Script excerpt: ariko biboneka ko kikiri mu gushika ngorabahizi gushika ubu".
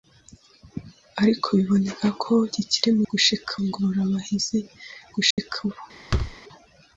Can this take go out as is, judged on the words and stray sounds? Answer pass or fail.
fail